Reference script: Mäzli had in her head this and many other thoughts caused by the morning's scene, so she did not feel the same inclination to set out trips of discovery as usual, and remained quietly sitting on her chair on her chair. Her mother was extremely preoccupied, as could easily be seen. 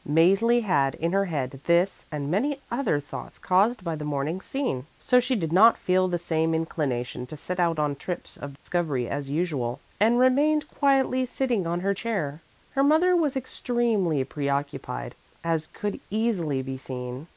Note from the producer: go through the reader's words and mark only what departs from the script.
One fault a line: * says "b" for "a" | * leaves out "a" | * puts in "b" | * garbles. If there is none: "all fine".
* puts in "on"
* leaves out "on her chair"